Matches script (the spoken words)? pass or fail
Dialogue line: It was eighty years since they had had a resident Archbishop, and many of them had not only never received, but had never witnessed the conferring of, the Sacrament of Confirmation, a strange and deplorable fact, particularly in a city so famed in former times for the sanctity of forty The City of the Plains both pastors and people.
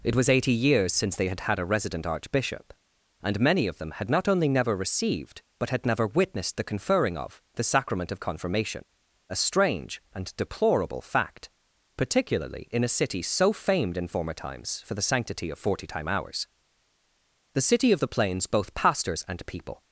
fail